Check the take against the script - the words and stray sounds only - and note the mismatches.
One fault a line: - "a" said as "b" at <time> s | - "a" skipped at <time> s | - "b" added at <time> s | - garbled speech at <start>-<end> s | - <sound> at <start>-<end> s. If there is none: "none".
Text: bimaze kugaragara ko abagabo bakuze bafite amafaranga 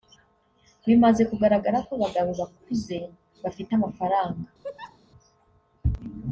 - laugh at 4.6-5.0 s